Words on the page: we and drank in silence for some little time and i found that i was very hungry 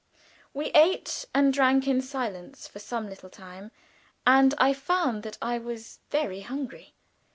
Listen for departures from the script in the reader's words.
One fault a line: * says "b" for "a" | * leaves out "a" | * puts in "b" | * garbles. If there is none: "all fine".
* puts in "ate"